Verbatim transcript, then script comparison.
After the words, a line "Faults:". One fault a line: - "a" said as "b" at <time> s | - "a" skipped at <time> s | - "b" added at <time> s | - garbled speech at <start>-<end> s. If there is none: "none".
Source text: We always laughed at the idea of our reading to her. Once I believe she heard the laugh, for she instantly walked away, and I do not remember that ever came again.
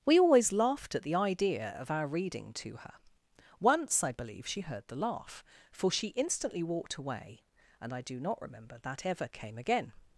We always laughed at the idea of our reading to her. Once I believe she heard the laugh, for she instantly walked away, and I do not remember that ever came again.
Faults:
none